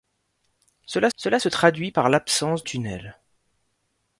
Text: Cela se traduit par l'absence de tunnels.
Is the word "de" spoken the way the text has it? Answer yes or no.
no